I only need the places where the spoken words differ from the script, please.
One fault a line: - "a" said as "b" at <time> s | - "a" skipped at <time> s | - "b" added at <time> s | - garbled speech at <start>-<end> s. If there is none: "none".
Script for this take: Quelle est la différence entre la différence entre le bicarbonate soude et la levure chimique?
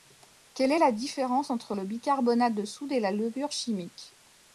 - "la différence entre" skipped at 1.7 s
- "de" added at 2.5 s